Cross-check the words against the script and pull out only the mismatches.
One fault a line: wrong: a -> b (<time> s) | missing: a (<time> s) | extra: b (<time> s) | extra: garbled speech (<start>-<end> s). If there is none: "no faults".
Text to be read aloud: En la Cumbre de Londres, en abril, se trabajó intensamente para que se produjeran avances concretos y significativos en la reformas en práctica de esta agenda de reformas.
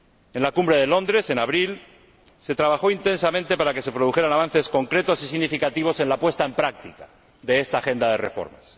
wrong: reformas -> puesta (6.2 s)